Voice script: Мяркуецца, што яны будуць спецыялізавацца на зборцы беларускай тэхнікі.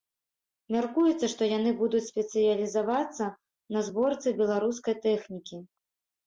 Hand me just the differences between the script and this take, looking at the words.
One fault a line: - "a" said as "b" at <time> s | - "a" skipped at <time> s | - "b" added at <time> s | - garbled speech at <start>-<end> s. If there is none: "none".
none